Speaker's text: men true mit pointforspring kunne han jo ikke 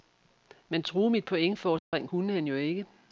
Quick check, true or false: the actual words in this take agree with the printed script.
true